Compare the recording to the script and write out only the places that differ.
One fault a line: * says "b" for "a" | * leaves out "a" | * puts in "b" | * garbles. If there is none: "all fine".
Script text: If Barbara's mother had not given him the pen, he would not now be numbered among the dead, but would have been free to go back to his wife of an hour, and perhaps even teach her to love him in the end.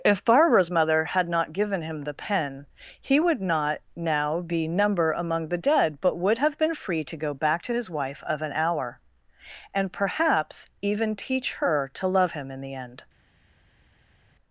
* says "number" for "numbered"